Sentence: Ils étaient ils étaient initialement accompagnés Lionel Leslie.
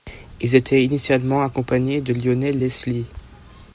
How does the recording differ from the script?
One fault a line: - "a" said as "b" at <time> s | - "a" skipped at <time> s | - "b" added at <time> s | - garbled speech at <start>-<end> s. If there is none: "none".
- "ils étaient" skipped at 0.8 s
- "de" added at 2.0 s